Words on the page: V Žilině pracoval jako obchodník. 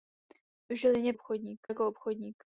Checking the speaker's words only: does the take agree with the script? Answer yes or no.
no